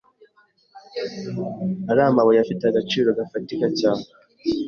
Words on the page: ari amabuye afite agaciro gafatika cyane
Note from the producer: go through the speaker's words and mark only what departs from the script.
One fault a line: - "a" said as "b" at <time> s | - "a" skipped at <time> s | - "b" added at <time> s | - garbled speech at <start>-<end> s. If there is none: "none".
none